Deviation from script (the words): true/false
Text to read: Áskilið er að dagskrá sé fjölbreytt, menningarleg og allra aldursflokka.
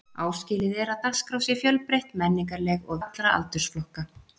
false